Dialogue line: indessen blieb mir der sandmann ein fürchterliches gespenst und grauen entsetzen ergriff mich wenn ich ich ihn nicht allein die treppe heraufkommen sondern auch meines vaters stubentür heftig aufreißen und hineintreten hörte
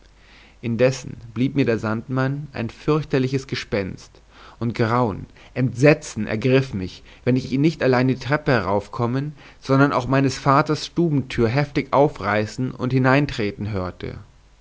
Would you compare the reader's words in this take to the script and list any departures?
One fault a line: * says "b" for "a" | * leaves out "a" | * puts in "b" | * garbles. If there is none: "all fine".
all fine